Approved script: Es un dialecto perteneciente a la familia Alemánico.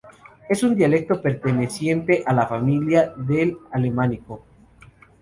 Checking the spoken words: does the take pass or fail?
fail